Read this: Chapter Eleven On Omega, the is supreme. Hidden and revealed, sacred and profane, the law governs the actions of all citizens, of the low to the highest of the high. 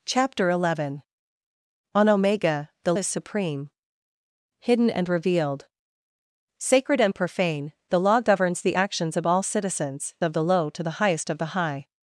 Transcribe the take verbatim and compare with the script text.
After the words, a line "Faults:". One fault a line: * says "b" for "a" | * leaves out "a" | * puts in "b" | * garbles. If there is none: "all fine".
Chapter Eleven On Omega, the is supreme. Hidden and revealed, sacred and profane, the law governs the actions of all citizens, of the low to the highest of the high.
Faults:
all fine